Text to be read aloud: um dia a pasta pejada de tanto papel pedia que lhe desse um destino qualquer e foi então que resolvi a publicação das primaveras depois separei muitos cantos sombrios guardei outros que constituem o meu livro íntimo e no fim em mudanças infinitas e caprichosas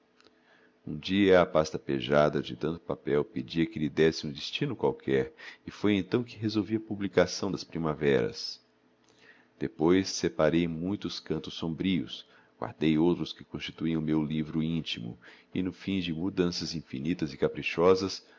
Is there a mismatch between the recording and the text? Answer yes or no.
yes